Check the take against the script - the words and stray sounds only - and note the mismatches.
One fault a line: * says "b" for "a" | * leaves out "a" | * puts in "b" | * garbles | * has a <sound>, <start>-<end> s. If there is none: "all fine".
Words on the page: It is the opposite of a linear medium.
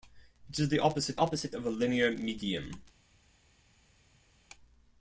* puts in "opposite"